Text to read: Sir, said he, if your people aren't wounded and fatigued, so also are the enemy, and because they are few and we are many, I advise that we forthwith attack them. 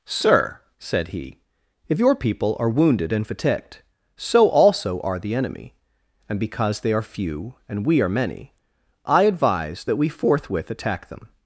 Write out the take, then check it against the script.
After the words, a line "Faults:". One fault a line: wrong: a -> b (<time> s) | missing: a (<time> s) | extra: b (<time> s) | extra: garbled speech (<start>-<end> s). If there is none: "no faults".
Sir, said he, if your people are wounded and fatigued, so also are the enemy, and because they are few and we are many, I advise that we forthwith attack them.
Faults:
wrong: aren't -> are (2.6 s)